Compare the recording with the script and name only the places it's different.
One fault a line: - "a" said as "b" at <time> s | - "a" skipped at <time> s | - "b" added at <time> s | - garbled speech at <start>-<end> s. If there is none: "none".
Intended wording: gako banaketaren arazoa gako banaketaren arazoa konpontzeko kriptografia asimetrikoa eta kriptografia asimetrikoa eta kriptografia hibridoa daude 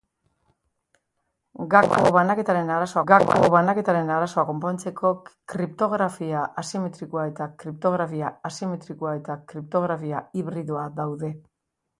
none